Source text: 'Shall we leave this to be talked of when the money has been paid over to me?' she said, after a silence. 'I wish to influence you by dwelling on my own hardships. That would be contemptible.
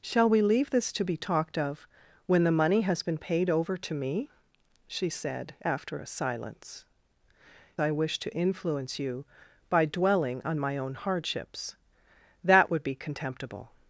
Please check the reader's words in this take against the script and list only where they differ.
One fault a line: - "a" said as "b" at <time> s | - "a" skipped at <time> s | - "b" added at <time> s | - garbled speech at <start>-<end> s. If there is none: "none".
none